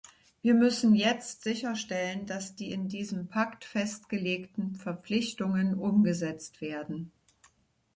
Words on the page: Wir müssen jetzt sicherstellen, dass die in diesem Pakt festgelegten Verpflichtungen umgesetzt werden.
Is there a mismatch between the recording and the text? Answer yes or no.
no